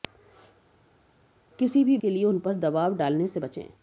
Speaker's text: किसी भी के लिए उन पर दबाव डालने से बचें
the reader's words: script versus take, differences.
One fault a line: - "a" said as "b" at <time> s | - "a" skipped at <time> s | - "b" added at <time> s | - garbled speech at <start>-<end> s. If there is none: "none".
none